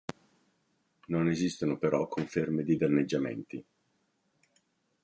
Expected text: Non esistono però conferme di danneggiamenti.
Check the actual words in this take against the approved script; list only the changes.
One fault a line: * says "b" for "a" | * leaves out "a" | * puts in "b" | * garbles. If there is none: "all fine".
all fine